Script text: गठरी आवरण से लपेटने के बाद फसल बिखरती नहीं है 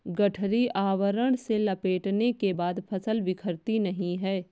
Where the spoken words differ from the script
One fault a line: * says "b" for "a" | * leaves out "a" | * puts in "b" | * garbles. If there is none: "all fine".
all fine